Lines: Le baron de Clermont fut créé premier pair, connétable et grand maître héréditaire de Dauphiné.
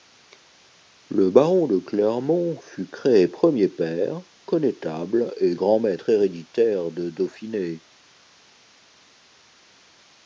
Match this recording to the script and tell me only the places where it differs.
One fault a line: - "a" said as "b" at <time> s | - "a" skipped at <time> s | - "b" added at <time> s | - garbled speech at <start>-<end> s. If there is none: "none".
none